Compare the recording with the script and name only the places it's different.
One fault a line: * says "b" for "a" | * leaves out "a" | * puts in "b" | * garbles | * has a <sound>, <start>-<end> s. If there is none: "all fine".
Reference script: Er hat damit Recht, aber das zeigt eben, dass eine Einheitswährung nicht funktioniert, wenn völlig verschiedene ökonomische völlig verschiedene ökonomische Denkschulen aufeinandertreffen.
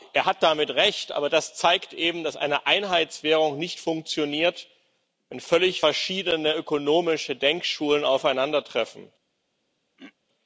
* leaves out "völlig verschiedene ökonomische"
* has a throat clearing, 10.0-10.1 s